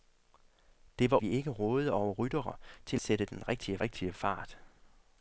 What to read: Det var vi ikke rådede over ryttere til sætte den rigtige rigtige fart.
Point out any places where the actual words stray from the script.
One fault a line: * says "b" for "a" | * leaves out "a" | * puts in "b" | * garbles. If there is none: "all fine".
all fine